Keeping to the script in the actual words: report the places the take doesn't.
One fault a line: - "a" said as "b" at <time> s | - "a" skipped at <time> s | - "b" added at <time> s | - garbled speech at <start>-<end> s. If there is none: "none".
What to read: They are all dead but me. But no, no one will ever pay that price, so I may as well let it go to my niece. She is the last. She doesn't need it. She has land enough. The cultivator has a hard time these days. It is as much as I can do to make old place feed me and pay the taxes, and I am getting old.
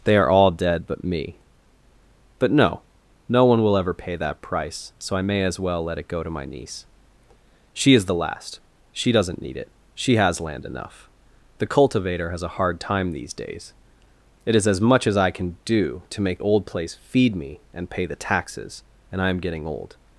none